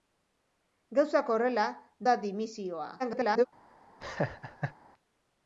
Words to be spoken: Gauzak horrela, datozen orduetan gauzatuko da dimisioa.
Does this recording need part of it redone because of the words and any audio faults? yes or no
yes